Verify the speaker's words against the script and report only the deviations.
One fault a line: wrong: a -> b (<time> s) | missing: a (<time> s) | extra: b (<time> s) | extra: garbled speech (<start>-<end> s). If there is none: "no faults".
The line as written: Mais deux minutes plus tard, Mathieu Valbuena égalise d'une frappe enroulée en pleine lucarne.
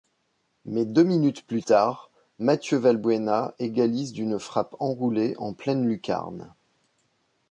no faults